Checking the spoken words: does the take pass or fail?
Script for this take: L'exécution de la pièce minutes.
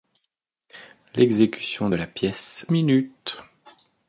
pass